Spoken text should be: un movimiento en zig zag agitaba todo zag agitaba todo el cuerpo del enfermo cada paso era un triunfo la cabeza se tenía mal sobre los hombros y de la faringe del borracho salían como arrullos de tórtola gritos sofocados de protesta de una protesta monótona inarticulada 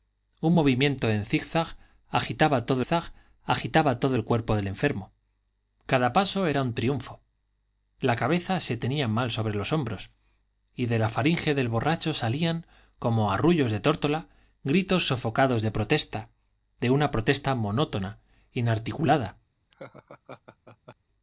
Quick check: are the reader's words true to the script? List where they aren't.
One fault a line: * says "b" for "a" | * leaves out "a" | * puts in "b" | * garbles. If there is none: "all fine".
all fine